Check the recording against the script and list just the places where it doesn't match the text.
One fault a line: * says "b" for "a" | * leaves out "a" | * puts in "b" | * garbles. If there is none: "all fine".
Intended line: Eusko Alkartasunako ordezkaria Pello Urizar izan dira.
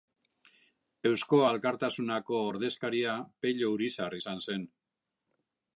* says "zen" for "dira"